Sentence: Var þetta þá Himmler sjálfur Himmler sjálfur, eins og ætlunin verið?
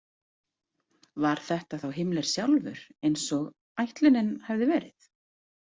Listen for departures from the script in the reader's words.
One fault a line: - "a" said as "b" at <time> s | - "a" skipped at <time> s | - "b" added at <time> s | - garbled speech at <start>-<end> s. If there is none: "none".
- "Himmler sjálfur" skipped at 2.8 s
- "hafði" added at 4.5 s